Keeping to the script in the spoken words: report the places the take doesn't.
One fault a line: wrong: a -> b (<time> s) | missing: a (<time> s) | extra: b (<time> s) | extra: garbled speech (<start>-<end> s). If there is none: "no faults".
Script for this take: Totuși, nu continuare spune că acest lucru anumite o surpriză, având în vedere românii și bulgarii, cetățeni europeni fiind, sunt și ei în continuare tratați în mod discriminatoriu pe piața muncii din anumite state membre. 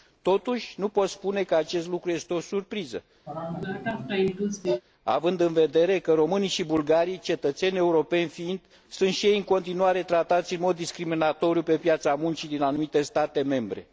wrong: continuare -> pot (0.9 s)
wrong: anumite -> este (2.1 s)
extra: că (6.0 s)